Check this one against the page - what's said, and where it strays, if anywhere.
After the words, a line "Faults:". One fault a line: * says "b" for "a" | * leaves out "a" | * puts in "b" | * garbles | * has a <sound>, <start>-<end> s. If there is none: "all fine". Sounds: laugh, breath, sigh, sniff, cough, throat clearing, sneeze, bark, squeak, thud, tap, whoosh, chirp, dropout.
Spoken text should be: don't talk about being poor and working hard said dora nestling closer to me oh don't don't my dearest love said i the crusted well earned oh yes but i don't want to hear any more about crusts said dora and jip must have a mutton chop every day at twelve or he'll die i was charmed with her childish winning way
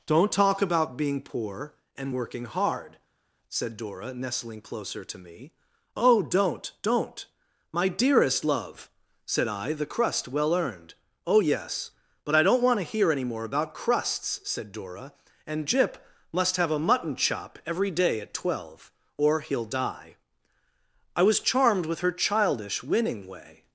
don't talk about being poor and working hard said dora nestling closer to me oh don't don't my dearest love said i the crust well earned oh yes but i don't want to hear any more about crusts said dora and jip must have a mutton chop every day at twelve or he'll die i was charmed with her childish winning way
Faults:
* says "crust" for "crusted"